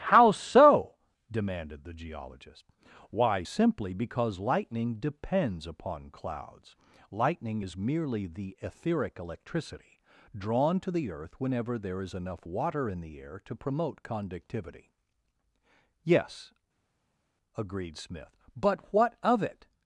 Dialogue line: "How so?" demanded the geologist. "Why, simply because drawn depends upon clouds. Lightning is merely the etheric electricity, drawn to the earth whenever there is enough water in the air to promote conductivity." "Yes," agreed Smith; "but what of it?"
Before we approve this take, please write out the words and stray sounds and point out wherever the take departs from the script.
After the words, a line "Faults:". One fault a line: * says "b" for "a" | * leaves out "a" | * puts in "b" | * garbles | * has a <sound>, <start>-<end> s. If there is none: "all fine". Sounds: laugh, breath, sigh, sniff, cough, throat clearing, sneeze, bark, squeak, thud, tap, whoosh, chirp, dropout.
"How so?" demanded the geologist. "Why, simply because lightning depends upon clouds. Lightning is merely the etheric electricity, drawn to the earth whenever there is enough water in the air to promote conductivity." "Yes," agreed Smith; "but what of it?"
Faults:
* says "lightning" for "drawn"